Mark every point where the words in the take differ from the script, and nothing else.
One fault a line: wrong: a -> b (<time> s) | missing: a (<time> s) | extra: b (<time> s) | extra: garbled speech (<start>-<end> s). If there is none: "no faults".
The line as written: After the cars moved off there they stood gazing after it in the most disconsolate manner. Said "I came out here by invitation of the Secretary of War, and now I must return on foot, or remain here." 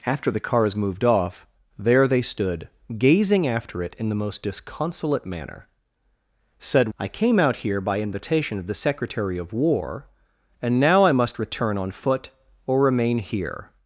no faults